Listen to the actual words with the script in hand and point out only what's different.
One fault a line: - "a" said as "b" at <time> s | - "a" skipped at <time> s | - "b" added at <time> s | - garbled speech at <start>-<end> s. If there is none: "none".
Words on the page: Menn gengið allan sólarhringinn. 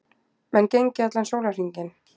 none